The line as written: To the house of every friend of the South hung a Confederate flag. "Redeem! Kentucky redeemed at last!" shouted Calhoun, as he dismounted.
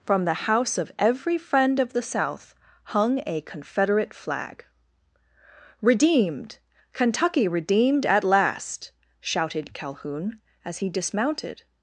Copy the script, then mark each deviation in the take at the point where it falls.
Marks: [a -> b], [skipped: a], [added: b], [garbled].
[To -> From] the house of every friend of the South hung a Confederate flag. ["Redeem! -> Redeemed] Kentucky redeemed at last!" shouted Calhoun, as he dismounted.